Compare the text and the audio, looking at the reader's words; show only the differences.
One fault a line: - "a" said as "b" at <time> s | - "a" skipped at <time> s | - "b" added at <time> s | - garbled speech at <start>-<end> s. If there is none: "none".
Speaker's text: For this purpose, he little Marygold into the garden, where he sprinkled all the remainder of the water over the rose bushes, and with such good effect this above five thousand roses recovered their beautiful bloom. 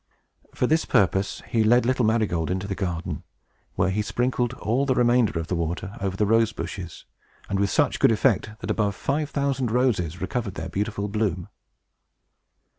- "led" added at 1.6 s
- "this" said as "that" at 8.6 s